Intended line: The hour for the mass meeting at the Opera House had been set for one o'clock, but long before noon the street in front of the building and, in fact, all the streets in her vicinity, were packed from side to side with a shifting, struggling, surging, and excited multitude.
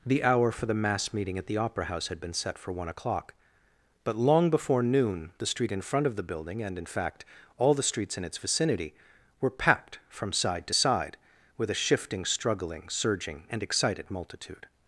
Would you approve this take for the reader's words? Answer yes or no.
no